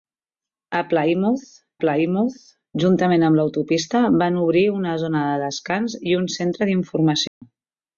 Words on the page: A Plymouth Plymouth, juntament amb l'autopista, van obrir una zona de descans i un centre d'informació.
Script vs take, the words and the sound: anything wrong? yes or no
yes